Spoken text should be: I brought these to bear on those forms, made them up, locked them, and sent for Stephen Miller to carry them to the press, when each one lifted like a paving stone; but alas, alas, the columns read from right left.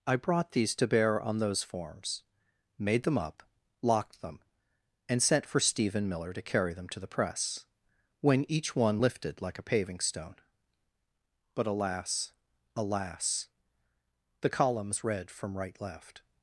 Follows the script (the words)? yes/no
yes